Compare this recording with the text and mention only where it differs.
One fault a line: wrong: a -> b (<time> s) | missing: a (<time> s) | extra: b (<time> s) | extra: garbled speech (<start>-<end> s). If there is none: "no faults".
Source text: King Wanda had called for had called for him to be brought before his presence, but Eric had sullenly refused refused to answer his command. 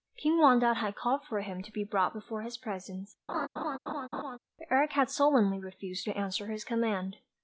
missing: had called for (1.4 s)
missing: refused (6.1 s)